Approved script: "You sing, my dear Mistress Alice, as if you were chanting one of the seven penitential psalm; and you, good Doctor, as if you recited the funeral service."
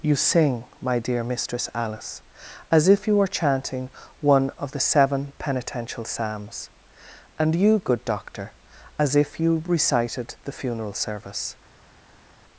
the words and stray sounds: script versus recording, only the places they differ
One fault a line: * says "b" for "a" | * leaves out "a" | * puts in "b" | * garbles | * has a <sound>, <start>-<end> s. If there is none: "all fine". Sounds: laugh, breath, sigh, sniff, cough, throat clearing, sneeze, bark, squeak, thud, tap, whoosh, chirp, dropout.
* says "psalms" for "psalm"